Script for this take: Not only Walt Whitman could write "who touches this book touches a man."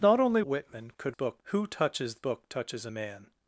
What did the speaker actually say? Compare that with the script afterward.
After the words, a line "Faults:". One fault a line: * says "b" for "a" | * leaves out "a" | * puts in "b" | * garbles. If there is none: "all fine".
Not only Whitman could book "who touches book touches a man."
Faults:
* leaves out "Walt"
* says "book" for "write"
* leaves out "this"